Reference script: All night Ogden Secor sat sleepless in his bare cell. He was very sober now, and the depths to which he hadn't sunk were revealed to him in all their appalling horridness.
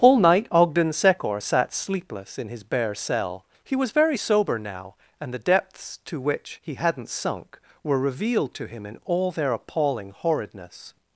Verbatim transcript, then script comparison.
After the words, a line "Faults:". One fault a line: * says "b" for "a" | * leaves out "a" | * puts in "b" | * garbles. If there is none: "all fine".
All night Ogden Secor sat sleepless in his bare cell. He was very sober now, and the depths to which he hadn't sunk were revealed to him in all their appalling horridness.
Faults:
all fine